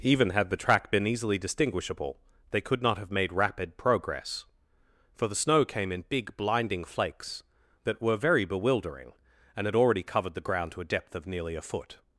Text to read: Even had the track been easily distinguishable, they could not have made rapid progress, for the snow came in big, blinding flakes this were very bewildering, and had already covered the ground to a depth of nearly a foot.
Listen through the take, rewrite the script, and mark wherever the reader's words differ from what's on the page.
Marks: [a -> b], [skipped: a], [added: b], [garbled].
Even had the track been easily distinguishable, they could not have made rapid progress, for the snow came in big, blinding flakes [this -> that] were very bewildering, and had already covered the ground to a depth of nearly a foot.